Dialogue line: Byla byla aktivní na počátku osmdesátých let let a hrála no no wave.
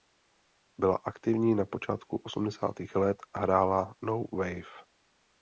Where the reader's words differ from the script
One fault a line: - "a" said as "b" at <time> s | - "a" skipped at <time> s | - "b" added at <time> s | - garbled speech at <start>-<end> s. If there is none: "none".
- "byla" skipped at 1.0 s
- "let" skipped at 3.2 s
- "no" skipped at 4.2 s